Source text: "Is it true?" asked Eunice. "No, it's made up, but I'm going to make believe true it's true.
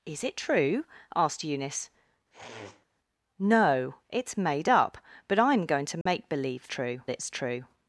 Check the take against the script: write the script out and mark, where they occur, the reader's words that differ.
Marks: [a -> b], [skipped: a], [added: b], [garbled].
"Is it true?" asked Eunice. "No, it's made up, but I'm going to make believe true it's true.